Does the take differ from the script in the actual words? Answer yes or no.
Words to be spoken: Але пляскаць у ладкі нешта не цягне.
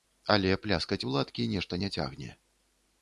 no